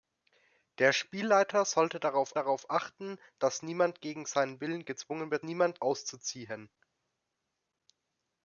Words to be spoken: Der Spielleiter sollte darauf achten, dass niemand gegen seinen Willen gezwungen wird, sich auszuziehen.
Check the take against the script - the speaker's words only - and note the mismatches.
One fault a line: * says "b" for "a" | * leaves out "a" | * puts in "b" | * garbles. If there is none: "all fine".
* puts in "darauf"
* says "niemand" for "sich"